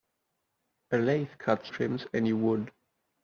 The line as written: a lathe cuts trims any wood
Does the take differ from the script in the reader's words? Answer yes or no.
no